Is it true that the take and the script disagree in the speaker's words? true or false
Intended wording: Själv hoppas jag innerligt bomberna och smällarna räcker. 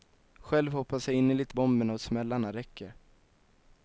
false